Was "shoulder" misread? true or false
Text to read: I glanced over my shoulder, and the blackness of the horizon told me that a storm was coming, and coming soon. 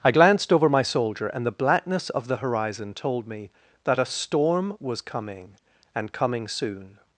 true